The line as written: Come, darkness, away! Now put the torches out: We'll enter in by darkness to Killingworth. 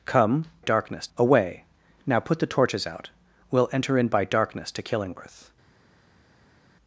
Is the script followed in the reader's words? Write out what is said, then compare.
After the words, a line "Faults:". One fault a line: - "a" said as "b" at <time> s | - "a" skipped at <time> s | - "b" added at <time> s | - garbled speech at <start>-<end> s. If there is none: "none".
Come, darkness, away! Now put the torches out: We'll enter in by darkness to Killingworth.
Faults:
none